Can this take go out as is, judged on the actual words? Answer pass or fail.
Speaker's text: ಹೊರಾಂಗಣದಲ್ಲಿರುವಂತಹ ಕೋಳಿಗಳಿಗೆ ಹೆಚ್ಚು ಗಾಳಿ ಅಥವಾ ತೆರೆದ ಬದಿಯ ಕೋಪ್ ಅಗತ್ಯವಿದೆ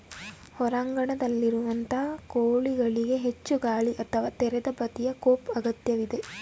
pass